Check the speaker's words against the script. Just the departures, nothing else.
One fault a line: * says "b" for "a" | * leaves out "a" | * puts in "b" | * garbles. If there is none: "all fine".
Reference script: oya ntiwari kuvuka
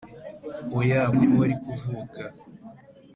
all fine